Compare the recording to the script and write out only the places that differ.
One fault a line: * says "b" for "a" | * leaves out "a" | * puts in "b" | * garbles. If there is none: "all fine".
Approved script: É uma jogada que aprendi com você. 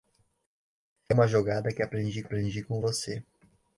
* puts in "aprendi"